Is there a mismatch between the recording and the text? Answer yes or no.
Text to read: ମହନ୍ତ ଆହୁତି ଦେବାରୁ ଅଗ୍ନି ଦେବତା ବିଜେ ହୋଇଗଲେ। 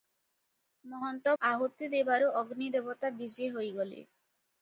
no